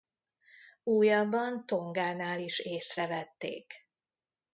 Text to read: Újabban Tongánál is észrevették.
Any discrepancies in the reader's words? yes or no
no